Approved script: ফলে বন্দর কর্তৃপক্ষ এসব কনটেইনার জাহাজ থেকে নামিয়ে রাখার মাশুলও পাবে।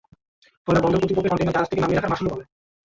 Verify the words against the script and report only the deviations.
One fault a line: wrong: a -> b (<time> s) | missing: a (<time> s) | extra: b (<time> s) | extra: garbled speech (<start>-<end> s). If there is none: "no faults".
missing: এসব (1.3 s)